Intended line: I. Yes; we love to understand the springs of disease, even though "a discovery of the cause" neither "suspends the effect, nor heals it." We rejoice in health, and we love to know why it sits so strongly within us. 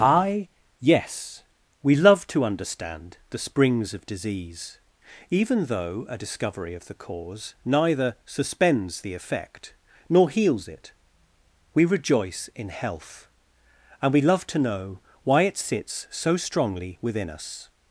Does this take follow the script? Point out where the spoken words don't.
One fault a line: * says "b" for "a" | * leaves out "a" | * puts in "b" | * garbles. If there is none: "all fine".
all fine